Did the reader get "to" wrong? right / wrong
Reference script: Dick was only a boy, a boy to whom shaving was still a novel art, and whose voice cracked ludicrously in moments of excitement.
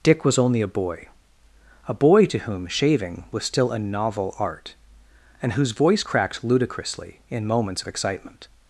right